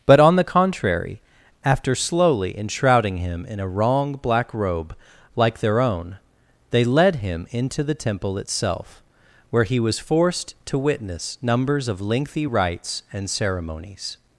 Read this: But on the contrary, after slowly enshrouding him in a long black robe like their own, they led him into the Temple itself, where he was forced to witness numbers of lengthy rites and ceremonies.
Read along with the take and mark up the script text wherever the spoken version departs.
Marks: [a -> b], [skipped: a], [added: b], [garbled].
But on the contrary, after slowly enshrouding him in a [long -> wrong] black robe like their own, they led him into the Temple itself, where he was forced to witness numbers of lengthy rites and ceremonies.